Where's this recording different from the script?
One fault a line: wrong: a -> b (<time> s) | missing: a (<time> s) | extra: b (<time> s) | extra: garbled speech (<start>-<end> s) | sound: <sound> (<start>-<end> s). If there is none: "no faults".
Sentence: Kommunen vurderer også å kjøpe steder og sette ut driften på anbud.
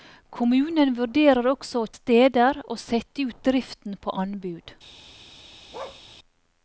missing: kjøpe (1.9 s)
sound: bark (5.7-6.0 s)